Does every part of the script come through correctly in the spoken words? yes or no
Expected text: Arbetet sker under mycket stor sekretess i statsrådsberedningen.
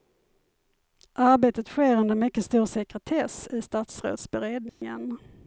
yes